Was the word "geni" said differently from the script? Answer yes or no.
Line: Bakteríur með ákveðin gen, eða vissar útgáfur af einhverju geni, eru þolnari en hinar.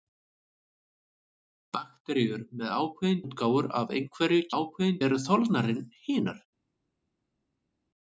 yes